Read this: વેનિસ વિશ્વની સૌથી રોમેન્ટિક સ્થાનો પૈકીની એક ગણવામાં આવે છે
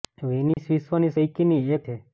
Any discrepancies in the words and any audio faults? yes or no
yes